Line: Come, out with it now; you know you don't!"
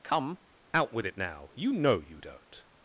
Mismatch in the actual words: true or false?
false